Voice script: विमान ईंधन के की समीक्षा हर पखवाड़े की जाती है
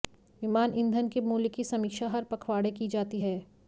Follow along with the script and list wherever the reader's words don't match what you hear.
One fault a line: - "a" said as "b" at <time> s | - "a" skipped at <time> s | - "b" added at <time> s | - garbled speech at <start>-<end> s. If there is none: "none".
- "मूल्य" added at 1.2 s